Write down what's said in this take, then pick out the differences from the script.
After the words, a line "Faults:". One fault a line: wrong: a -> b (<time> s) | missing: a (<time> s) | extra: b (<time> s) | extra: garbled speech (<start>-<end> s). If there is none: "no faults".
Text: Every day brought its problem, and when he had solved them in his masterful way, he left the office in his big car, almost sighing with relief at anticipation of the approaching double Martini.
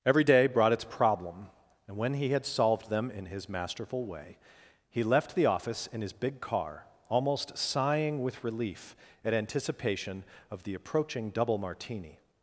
Every day brought its problem, and when he had solved them in his masterful way, he left the office in his big car, almost sighing with relief at anticipation of the approaching double Martini.
Faults:
no faults